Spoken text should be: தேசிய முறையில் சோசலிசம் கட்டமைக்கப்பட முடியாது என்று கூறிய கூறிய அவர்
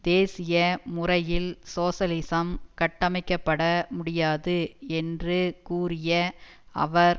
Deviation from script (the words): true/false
true